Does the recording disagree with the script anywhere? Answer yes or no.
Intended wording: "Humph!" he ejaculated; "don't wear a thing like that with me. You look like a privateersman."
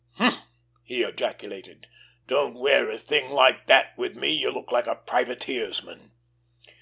no